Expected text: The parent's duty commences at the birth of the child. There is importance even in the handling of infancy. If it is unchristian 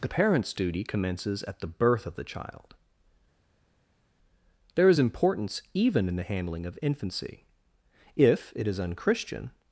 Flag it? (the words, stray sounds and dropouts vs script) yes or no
no